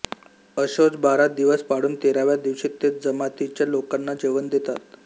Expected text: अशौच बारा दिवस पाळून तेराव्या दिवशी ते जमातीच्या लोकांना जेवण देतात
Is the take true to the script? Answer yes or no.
yes